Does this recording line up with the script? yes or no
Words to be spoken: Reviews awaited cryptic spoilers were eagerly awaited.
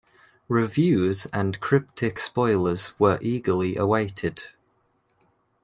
no